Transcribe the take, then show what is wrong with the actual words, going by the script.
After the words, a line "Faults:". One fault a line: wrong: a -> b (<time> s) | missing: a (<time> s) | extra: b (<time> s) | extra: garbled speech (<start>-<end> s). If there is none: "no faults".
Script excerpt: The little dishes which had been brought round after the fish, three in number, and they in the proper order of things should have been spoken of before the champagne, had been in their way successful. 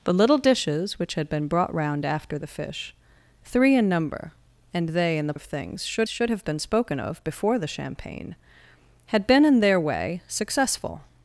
The little dishes which had been brought round after the fish, three in number, and they in the of things should should have been spoken of before the champagne, had been in their way successful.
Faults:
missing: proper order (5.3 s)
extra: should (6.1 s)